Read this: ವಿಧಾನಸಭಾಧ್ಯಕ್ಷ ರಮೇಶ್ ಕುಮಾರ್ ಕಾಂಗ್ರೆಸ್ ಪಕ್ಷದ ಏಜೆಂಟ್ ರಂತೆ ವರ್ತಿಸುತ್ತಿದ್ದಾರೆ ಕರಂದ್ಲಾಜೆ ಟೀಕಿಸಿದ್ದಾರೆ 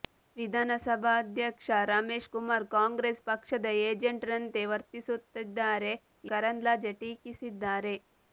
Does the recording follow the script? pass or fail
pass